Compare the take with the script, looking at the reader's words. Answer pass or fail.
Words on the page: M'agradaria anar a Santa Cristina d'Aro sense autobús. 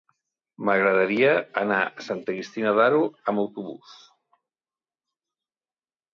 fail